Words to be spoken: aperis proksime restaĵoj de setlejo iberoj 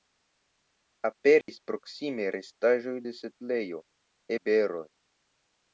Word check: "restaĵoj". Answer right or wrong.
right